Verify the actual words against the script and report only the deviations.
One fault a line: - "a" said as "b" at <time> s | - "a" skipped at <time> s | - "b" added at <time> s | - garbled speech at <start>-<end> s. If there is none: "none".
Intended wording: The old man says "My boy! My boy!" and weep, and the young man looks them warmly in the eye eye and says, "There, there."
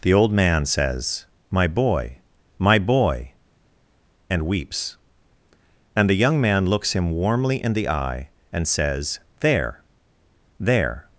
- "weep" said as "weeps" at 4.5 s
- "them" said as "him" at 6.9 s
- "eye" skipped at 8.3 s